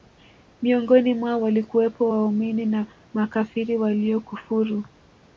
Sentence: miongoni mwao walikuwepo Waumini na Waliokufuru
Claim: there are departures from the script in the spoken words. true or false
true